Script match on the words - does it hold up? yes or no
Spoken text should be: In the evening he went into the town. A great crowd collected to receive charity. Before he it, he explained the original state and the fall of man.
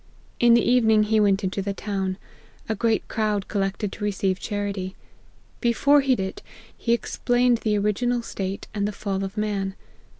yes